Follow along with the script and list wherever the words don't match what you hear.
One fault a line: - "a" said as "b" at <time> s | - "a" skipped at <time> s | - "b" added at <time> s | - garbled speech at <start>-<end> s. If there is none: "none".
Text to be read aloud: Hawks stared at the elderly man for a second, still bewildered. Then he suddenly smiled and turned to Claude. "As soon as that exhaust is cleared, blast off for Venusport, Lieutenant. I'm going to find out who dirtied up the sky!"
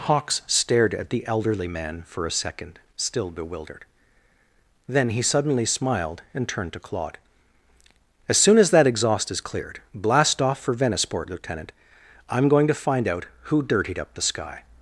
none